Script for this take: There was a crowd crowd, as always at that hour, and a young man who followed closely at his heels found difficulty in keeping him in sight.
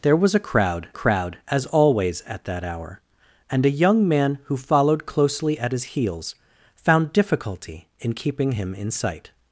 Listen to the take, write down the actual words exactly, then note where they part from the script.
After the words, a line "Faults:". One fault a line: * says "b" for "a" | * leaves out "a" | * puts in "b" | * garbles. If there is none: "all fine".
There was a crowd crowd, as always at that hour, and a young man who followed closely at his heels found difficulty in keeping him in sight.
Faults:
all fine